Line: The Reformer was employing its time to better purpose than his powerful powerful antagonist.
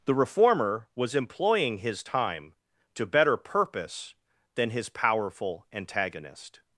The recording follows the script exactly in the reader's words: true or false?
false